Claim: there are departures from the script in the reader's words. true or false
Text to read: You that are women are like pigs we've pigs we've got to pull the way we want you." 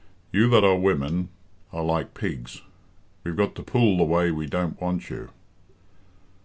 true